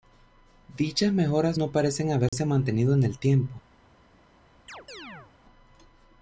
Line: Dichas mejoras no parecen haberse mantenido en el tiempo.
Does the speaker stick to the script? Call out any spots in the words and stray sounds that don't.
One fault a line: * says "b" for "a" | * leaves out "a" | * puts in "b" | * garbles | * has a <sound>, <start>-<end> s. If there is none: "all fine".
* has a dropout, 2.3-2.3 s
* has a chirp, 4.7-5.3 s